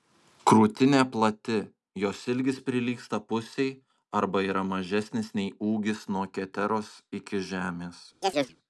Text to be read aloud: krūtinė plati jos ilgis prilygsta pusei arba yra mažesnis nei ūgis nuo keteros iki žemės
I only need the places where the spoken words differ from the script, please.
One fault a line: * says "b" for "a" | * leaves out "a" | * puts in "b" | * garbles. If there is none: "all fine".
all fine